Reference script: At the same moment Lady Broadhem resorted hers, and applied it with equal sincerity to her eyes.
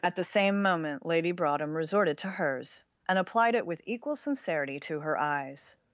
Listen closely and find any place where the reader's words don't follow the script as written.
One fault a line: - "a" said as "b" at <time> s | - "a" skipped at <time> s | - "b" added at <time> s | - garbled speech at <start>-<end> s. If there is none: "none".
- "to" added at 2.2 s